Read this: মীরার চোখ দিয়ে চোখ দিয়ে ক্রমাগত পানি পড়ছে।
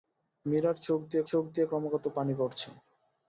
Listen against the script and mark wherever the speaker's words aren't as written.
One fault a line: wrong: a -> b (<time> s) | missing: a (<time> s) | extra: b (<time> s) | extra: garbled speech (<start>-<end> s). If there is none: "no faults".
no faults